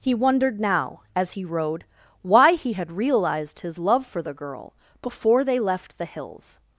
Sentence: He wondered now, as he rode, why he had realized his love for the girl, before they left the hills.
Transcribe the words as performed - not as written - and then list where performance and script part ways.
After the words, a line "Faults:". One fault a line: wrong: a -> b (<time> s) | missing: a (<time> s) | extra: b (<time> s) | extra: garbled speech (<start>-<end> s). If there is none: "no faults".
He wondered now, as he rode, why he had realized his love for the girl, before they left the hills.
Faults:
no faults